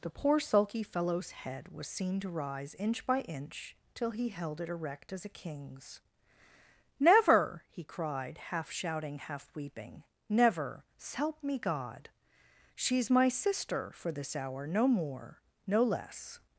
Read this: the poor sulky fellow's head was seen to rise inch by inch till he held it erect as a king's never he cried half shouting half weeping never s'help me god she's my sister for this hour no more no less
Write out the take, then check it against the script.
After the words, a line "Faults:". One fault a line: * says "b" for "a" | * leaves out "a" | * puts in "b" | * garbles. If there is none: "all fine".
the poor sulky fellow's head was seen to rise inch by inch till he held it erect as a king's never he cried half shouting half weeping never s'help me god she's my sister for this hour no more no less
Faults:
all fine